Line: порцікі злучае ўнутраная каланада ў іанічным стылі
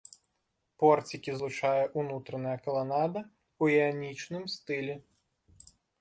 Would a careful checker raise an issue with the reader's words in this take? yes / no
no